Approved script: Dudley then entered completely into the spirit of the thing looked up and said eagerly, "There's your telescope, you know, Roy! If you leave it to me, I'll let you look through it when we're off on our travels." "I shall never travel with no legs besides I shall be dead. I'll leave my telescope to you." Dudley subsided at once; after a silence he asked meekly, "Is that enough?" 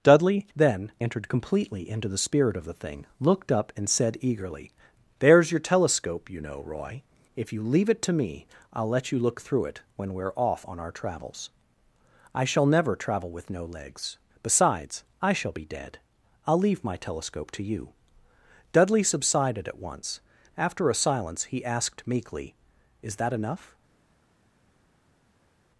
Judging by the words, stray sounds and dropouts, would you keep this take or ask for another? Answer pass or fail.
pass